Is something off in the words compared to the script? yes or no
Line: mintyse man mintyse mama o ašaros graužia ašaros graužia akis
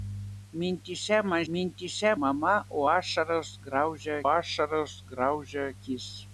no